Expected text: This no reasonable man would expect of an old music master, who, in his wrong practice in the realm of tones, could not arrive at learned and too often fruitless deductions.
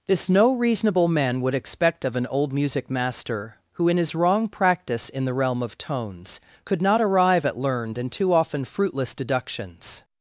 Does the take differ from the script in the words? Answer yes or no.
no